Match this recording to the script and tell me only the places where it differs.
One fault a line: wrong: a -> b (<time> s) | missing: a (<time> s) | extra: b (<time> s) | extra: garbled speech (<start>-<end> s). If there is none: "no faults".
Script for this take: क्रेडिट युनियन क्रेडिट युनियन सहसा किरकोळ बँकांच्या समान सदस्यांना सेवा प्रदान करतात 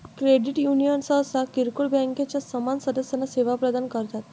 missing: क्रेडिट युनियन (1.0 s)